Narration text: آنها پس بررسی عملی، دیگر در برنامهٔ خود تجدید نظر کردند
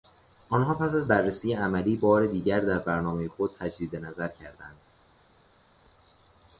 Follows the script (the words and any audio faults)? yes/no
no